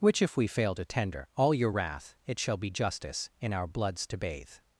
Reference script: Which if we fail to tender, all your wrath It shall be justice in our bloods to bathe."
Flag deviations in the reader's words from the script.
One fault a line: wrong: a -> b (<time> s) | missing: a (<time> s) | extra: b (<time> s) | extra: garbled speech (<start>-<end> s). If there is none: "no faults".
no faults